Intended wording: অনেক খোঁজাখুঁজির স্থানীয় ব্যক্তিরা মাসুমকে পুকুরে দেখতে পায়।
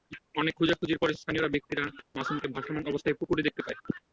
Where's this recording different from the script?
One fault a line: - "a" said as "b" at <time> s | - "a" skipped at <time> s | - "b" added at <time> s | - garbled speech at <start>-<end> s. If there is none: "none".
- "পরে" added at 1.0 s
- "ভাসমান অবস্থায়" added at 2.5 s